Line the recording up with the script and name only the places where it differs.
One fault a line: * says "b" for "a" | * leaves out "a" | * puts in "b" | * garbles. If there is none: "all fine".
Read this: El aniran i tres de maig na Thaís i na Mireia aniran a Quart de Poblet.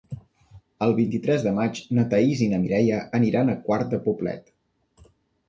* says "vint" for "aniran"